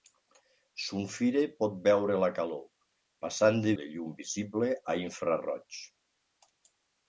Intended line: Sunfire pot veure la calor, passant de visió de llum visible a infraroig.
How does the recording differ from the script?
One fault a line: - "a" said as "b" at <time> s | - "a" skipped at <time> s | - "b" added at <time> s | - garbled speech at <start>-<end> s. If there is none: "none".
- "visió" skipped at 3.8 s